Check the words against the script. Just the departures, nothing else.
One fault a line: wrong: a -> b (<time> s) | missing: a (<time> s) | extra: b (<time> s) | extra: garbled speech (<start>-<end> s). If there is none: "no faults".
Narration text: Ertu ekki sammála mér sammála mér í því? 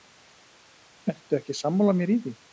missing: sammála mér (2.2 s)